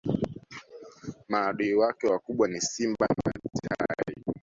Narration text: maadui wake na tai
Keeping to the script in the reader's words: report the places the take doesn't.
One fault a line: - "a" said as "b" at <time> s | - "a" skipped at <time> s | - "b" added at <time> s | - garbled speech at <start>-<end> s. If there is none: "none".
- "wakubwa ni simba" added at 2.0 s